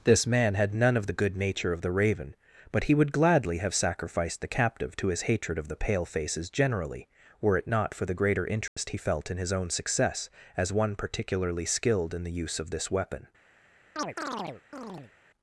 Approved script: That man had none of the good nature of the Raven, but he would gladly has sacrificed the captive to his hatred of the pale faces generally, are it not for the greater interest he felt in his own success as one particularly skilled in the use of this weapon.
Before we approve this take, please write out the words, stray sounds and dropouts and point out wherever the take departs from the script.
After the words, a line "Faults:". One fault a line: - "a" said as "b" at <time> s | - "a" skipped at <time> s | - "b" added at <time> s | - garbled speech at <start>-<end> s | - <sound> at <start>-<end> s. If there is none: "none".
This man had none of the good nature of the Raven, but he would gladly have sacrificed the captive to his hatred of the pale faces generally, were it not for the greater interest he felt in his own success as one particularly skilled in the use of this weapon.
Faults:
- "That" said as "This" at 0.0 s
- "has" said as "have" at 3.6 s
- "are" said as "were" at 7.4 s
- dropout at 8.7-8.8 s
- chirp at 14.0-15.1 s